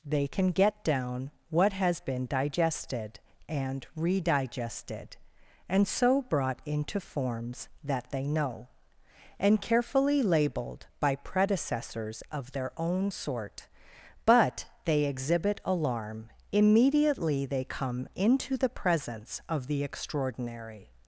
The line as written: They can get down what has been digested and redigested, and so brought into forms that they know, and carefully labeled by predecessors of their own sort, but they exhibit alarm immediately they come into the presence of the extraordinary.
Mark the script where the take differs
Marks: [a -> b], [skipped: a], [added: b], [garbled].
They can get down what has been digested and redigested, and so brought into forms that they know, and carefully labeled by predecessors of their own sort, but they exhibit alarm immediately they come into the presence of the extraordinary.